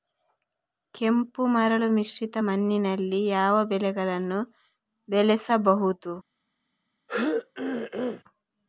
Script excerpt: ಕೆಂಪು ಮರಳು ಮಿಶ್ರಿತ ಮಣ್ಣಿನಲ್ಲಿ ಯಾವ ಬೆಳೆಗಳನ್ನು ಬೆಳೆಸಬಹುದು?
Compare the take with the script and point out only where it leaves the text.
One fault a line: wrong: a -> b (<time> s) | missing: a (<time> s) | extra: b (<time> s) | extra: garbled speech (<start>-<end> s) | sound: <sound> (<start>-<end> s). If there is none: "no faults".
sound: throat clearing (7.1-8.2 s)